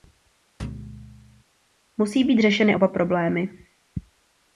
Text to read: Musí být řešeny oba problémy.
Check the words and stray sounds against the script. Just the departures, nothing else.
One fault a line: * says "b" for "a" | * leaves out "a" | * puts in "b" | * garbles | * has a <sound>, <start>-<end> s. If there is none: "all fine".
* has a thud, 0.6-1.4 s